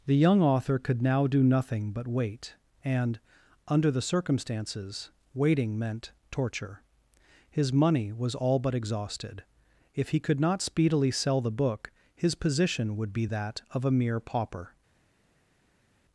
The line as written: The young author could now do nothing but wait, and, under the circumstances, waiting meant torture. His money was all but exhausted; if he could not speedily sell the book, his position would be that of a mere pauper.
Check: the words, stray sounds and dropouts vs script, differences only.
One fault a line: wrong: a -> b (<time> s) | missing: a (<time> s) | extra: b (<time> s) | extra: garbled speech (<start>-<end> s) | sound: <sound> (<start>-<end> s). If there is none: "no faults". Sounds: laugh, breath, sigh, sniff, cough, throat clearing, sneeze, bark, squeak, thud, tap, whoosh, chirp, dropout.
no faults